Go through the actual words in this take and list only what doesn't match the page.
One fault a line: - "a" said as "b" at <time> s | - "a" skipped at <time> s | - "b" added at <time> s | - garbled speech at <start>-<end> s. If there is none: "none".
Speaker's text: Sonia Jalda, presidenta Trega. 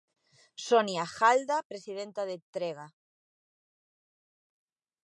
- "de" added at 2.3 s